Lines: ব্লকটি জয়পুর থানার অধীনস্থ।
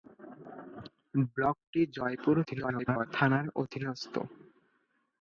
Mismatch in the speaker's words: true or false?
true